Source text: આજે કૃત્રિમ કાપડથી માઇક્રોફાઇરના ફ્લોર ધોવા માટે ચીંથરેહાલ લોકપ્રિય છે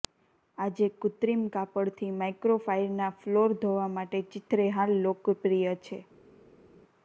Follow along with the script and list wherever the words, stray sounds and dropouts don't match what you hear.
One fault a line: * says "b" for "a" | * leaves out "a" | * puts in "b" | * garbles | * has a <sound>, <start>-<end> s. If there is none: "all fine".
all fine